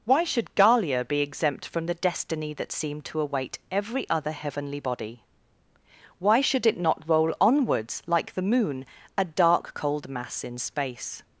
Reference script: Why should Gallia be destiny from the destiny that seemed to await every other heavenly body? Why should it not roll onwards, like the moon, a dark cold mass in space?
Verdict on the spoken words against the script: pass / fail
fail